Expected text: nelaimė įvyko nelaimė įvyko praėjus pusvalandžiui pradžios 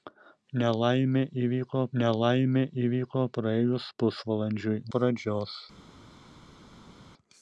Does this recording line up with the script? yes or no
yes